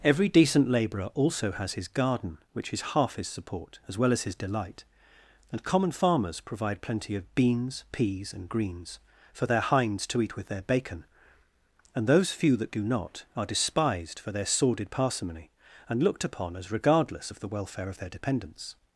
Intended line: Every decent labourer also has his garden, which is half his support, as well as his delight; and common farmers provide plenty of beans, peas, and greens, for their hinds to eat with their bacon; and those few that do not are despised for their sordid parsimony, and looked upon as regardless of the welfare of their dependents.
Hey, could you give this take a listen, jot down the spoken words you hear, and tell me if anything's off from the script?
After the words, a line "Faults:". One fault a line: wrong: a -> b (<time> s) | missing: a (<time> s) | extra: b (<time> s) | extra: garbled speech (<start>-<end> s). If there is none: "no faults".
Every decent labourer also has his garden, which is half his support, as well as his delight; and common farmers provide plenty of beans, peas, and greens, for their hinds to eat with their bacon; and those few that do not are despised for their sordid parsimony, and looked upon as regardless of the welfare of their dependents.
Faults:
no faults